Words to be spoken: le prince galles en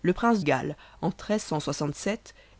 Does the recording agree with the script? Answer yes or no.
yes